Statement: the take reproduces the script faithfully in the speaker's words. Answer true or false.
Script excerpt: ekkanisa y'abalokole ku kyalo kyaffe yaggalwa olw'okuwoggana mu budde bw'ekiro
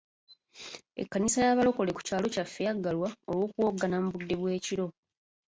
true